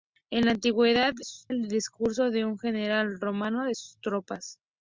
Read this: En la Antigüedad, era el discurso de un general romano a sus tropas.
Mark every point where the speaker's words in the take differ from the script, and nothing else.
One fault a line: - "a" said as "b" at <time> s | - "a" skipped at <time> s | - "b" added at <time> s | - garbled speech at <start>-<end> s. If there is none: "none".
- "era" said as "sus" at 1.2 s